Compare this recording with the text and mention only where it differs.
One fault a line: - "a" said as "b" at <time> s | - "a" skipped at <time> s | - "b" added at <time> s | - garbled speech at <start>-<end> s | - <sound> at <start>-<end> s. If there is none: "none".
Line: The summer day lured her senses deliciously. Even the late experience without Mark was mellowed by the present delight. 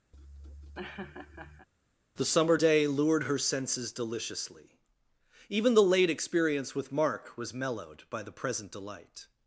- laugh at 0.1-1.7 s
- "without" said as "with" at 6.7 s